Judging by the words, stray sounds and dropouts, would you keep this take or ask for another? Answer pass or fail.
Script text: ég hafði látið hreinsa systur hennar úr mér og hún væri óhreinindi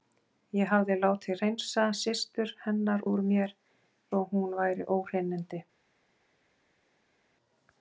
pass